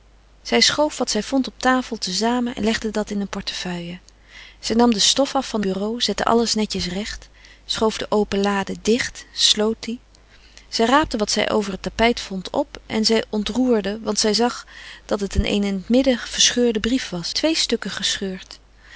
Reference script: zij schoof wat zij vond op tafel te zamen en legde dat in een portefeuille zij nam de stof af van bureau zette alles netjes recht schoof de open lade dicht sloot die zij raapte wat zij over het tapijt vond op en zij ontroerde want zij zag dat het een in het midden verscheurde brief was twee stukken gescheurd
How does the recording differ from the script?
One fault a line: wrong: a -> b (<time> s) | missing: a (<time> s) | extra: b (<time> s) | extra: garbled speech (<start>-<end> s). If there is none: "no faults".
no faults